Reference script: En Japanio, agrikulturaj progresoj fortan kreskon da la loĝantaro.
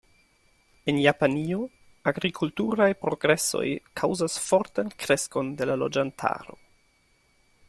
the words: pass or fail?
fail